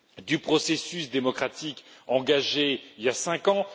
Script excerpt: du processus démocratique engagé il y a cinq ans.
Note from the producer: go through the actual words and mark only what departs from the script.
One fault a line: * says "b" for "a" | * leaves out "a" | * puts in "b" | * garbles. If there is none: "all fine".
all fine